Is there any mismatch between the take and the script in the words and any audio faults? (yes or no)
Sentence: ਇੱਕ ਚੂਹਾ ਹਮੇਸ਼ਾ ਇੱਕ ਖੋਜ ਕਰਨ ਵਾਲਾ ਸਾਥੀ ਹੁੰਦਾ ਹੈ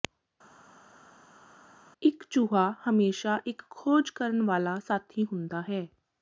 no